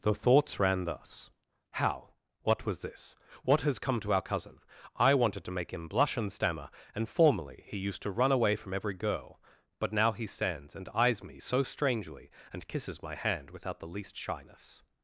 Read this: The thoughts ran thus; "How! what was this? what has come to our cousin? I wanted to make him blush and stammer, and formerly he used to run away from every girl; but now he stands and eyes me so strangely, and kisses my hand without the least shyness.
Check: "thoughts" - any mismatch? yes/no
no